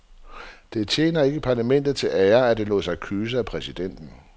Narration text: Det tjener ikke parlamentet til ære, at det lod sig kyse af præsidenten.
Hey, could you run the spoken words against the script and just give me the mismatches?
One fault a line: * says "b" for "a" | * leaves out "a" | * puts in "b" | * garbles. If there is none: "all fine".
all fine